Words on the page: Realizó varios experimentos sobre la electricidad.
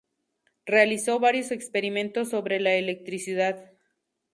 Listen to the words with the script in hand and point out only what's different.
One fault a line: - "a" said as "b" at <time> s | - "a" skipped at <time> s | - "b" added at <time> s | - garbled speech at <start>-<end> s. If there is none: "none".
none